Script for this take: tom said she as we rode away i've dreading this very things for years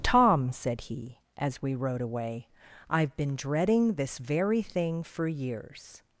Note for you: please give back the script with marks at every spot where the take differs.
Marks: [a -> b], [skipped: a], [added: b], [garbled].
tom said [she -> he] as we rode away i've [added: been] dreading this very [things -> thing] for years